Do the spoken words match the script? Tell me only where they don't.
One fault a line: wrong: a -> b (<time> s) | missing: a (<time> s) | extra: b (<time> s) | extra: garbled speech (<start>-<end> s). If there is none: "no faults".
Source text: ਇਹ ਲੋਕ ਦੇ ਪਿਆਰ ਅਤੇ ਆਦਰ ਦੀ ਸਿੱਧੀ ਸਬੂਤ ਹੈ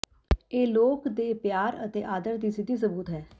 no faults